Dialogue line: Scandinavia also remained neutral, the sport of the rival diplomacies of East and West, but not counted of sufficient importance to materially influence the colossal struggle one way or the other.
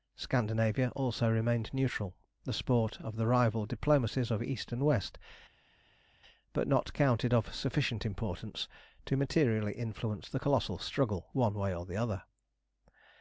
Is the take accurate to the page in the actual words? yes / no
yes